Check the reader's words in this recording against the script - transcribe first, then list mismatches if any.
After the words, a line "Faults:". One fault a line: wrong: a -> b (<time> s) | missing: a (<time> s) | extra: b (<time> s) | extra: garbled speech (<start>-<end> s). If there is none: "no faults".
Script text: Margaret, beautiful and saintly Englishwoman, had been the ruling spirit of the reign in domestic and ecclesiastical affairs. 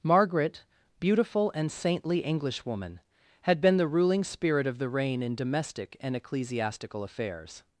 Margaret, beautiful and saintly Englishwoman, had been the ruling spirit of the reign in domestic and ecclesiastical affairs.
Faults:
no faults